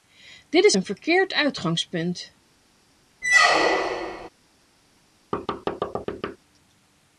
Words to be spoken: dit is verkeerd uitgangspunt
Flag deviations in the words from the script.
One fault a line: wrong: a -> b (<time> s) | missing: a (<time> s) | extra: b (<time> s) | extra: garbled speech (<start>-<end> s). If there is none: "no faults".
extra: een (0.7 s)